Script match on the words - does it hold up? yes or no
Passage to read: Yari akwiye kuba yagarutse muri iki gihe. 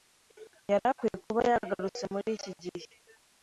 yes